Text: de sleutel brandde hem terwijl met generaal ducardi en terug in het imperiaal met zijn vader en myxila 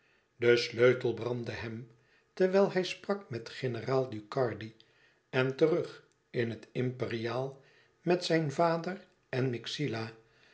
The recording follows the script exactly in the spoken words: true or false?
false